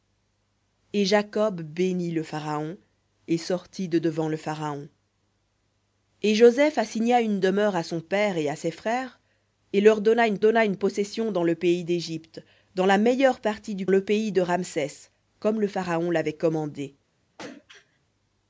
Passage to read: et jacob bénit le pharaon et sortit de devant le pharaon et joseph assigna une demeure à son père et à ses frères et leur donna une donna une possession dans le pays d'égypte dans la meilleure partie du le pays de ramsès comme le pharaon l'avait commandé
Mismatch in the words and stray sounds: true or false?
true